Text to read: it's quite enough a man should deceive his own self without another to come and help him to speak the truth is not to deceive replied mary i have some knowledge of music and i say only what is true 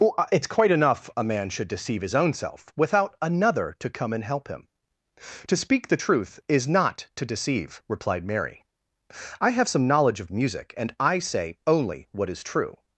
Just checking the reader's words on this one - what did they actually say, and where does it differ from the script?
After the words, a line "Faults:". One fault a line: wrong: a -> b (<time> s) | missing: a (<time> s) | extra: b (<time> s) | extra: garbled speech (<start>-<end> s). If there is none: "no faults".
it's quite enough a man should deceive his own self without another to come and help him to speak the truth is not to deceive replied mary i have some knowledge of music and i say only what is true
Faults:
no faults